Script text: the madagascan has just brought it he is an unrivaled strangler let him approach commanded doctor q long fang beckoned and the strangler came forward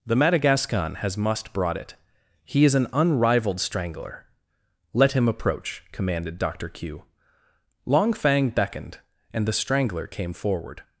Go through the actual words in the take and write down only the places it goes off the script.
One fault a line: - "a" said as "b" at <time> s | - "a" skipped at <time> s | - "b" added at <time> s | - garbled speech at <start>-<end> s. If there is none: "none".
- "just" said as "must" at 1.2 s